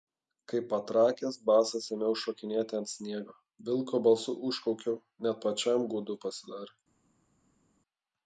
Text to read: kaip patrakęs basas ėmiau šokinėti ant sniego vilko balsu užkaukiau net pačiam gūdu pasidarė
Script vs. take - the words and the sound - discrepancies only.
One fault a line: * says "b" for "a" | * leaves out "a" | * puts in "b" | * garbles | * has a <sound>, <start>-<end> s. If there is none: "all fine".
all fine